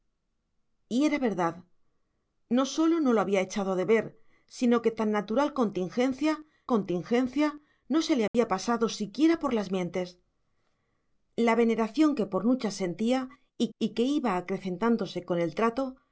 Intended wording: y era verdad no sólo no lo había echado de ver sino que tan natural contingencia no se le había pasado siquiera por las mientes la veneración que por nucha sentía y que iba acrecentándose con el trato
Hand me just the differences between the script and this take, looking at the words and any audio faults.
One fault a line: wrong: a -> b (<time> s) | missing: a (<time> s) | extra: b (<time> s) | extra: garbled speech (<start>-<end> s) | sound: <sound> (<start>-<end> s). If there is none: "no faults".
extra: contingencia (6.7 s)
sound: dropout (8.3-8.3 s)
extra: y (13.8 s)